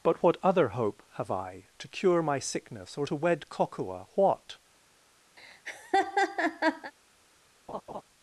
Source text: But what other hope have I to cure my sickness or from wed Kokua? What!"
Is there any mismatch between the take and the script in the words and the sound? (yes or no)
yes